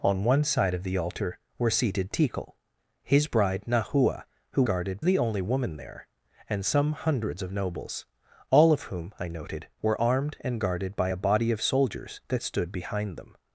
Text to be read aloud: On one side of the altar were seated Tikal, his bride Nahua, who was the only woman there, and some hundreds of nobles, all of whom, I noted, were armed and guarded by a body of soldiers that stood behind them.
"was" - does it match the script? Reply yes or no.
no